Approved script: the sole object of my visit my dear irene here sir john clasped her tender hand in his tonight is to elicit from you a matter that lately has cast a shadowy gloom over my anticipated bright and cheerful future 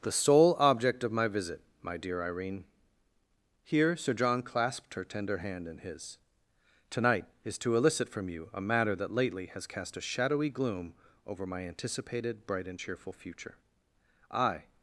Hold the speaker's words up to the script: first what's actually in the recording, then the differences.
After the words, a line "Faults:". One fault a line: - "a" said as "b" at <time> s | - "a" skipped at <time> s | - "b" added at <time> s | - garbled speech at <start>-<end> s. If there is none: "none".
the sole object of my visit my dear irene here sir john clasped her tender hand in his tonight is to elicit from you a matter that lately has cast a shadowy gloom over my anticipated bright and cheerful future i
Faults:
- "i" added at 14.3 s